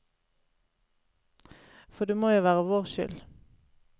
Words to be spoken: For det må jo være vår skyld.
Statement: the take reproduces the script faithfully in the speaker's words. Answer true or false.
true